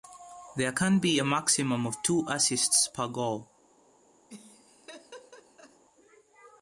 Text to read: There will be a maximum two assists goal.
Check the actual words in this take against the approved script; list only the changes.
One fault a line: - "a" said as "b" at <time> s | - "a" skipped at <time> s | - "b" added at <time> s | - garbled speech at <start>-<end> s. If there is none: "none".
- "will" said as "can" at 0.7 s
- "of" added at 1.8 s
- "per" added at 2.8 s